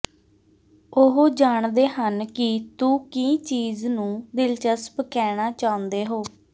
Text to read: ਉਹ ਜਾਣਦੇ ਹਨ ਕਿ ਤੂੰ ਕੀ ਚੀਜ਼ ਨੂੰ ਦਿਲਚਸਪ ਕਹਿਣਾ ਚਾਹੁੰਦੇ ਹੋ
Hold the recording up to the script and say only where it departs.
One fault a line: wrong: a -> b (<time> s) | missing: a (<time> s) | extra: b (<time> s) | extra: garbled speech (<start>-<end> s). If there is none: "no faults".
no faults